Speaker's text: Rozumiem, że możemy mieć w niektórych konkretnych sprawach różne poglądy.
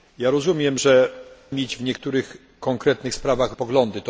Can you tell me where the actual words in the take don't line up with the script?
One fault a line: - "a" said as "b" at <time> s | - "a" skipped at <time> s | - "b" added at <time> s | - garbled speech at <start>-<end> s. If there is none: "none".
- "możemy" skipped at 1.1 s
- "różne" skipped at 3.5 s